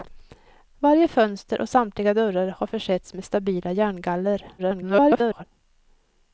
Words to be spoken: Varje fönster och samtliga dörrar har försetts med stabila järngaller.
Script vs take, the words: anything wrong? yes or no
yes